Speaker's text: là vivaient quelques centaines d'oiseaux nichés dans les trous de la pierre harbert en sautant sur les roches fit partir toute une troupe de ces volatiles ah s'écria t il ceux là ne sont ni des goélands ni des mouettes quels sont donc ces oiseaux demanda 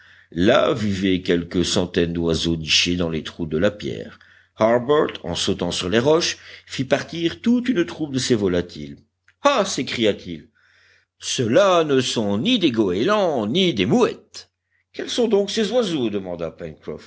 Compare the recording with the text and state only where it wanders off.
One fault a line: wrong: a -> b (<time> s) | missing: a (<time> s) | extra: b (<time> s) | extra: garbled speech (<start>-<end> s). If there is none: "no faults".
no faults